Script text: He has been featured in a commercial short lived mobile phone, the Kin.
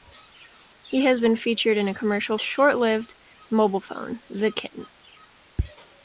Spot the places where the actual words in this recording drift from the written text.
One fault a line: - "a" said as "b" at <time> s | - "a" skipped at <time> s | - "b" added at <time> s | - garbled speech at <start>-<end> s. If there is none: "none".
none